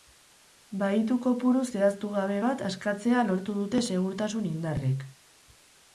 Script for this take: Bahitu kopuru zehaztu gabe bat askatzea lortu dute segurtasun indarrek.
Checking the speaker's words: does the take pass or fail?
pass